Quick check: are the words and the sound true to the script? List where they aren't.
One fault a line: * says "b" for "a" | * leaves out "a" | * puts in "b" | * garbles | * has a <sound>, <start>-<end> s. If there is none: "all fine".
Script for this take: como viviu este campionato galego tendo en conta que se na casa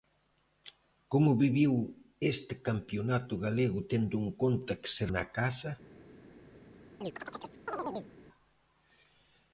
* has a chirp, 7.0-8.1 s